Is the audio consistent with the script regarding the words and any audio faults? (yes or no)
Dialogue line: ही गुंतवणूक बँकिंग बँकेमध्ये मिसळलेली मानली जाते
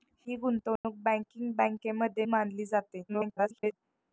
no